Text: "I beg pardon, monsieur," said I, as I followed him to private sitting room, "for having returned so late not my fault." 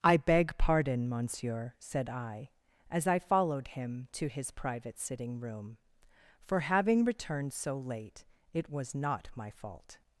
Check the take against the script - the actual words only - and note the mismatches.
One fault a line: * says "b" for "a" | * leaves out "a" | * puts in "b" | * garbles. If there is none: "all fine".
* puts in "his"
* puts in "it was"